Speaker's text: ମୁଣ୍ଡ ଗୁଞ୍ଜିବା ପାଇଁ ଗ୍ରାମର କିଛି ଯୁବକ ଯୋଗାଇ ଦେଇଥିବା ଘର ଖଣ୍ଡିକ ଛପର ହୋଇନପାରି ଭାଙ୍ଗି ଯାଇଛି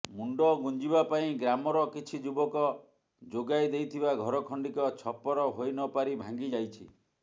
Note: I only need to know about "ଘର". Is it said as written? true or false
true